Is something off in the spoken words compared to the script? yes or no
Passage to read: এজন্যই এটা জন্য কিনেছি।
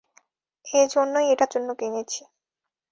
no